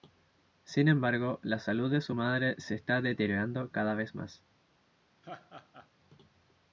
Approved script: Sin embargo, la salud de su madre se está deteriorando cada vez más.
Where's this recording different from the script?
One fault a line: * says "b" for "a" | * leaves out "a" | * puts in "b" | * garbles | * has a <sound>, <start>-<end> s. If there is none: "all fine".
* has a laugh, 5.2-5.9 s